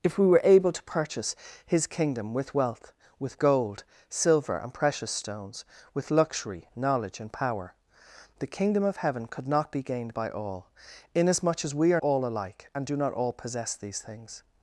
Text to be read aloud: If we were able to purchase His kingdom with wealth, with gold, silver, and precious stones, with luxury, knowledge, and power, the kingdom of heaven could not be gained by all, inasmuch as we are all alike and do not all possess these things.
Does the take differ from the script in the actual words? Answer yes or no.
no